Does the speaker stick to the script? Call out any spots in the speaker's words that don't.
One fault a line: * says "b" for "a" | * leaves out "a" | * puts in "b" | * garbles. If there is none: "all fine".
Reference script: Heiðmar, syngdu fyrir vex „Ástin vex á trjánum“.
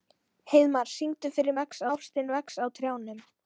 all fine